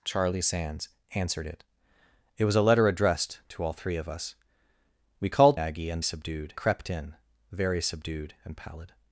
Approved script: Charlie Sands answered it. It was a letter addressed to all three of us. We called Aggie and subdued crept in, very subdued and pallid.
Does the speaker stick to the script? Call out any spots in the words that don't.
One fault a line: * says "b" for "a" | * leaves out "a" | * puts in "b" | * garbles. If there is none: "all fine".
all fine